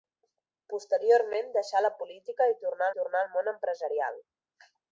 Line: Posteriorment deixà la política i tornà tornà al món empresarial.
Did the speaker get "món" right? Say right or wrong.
right